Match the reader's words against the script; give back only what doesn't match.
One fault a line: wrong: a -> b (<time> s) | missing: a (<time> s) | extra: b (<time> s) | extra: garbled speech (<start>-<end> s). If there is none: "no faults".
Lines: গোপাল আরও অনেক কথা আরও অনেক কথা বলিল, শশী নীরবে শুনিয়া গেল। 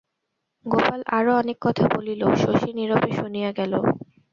missing: আরও অনেক কথা (1.9 s)